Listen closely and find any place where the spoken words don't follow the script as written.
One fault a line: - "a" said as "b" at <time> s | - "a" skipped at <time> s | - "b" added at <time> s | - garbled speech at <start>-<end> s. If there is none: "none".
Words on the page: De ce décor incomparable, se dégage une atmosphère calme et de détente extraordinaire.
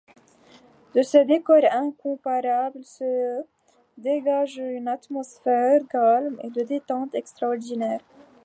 none